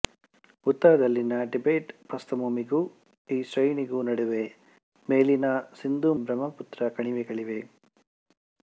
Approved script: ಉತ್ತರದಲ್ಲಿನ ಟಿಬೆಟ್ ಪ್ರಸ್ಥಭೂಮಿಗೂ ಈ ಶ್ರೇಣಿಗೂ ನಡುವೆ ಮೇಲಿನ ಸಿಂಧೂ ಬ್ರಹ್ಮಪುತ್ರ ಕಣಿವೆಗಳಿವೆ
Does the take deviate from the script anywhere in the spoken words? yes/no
no